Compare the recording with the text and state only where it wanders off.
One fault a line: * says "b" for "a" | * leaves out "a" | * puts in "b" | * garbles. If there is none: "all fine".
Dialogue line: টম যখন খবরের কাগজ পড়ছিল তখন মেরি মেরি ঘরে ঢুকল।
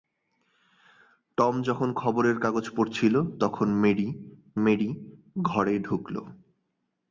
all fine